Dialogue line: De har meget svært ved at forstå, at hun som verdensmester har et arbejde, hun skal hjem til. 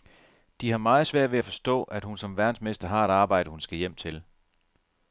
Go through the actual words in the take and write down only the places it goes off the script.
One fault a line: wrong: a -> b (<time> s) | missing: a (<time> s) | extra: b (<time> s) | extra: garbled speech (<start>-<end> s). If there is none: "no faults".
no faults